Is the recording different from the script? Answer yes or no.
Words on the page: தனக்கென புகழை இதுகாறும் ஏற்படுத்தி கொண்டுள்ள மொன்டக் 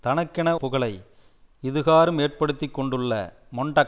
no